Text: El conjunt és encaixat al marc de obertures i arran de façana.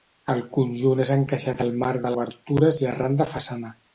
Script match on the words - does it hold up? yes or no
yes